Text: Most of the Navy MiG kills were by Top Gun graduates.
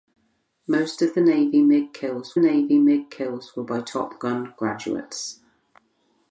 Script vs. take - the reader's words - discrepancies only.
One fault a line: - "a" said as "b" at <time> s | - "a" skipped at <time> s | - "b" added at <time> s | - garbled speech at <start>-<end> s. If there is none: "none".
- "Navy MiG kills" added at 2.4 s